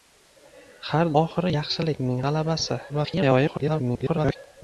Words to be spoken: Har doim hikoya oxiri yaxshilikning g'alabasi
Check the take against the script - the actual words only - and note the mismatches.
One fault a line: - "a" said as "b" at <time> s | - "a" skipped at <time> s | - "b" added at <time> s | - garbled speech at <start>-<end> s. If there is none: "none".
- "doim hikoya" skipped at 1.1 s
- garbled speech at 2.9-4.4 s